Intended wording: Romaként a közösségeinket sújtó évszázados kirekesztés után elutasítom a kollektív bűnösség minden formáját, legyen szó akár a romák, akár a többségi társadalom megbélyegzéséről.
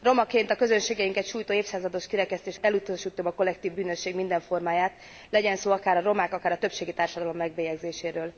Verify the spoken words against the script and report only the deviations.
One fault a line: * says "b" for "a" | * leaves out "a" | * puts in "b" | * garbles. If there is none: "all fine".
* leaves out "után"